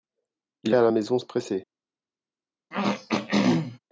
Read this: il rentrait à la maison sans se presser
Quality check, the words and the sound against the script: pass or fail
fail